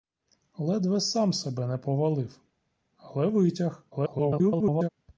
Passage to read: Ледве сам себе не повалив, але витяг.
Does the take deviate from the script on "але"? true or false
false